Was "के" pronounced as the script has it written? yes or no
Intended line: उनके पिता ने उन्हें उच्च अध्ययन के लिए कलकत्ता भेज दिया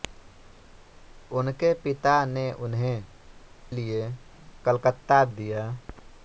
no